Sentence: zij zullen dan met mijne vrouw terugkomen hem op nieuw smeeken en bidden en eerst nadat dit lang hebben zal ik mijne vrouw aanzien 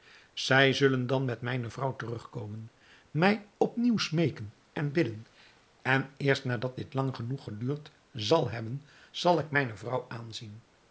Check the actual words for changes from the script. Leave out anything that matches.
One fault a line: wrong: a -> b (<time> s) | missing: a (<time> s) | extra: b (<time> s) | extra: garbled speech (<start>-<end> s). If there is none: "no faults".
wrong: hem -> mij (3.1 s)
extra: genoeg geduurd zal (7.1 s)